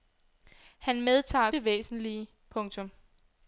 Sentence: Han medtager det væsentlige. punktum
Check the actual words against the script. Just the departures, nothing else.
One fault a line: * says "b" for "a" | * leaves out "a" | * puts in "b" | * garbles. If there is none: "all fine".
all fine